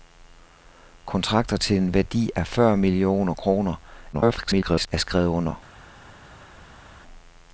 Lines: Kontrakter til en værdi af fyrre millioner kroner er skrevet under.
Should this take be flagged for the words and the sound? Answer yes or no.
yes